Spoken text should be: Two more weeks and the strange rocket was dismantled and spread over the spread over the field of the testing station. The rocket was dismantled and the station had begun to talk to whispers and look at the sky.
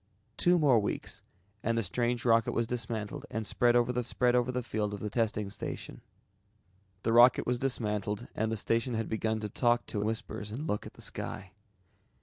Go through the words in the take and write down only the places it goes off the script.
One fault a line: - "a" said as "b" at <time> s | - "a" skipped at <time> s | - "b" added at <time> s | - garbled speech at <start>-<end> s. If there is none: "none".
none